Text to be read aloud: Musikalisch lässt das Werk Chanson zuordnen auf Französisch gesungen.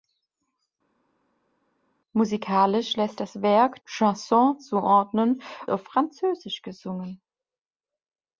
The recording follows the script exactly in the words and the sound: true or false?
true